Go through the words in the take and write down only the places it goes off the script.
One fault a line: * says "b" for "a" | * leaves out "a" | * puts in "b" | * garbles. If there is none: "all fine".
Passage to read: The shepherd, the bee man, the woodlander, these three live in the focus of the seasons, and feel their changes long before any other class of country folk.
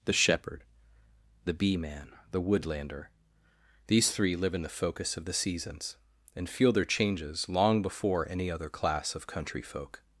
all fine